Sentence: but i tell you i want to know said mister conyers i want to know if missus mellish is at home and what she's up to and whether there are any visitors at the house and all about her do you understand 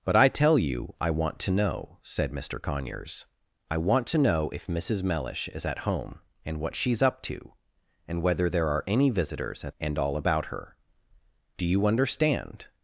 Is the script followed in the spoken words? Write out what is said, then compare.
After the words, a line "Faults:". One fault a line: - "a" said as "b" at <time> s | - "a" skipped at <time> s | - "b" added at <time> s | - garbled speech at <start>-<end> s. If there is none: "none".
but i tell you i want to know said mister conyers i want to know if missus mellish is at home and what she's up to and whether there are any visitors at and all about her do you understand
Faults:
- "the house" skipped at 9.8 s